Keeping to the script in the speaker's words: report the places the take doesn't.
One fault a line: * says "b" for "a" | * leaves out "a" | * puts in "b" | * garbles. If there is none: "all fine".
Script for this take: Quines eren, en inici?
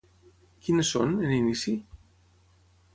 * says "són" for "eren"